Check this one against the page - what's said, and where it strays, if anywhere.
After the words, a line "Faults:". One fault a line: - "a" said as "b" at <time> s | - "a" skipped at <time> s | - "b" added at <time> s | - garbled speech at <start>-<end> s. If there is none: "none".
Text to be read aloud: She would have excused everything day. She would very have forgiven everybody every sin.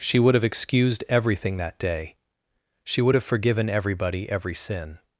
She would have excused everything that day. She would have forgiven everybody every sin.
Faults:
- "that" added at 1.6 s
- "very" skipped at 3.1 s